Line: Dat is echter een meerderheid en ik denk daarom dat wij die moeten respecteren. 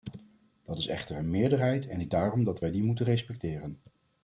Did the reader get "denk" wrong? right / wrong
wrong